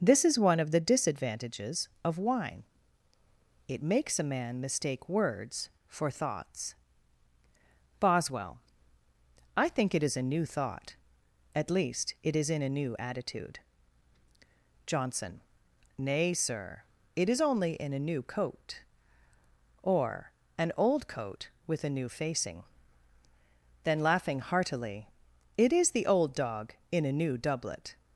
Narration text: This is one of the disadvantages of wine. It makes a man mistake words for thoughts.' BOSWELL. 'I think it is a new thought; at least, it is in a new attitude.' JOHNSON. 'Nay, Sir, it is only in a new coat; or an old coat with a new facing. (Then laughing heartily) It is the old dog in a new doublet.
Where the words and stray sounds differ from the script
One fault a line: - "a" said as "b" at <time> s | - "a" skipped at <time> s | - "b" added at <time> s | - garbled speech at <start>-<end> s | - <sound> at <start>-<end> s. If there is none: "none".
none